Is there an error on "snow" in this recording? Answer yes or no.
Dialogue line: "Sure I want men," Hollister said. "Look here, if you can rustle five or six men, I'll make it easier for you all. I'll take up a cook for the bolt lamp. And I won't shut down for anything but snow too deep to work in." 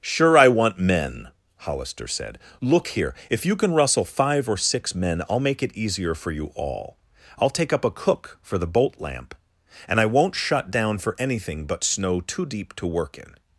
no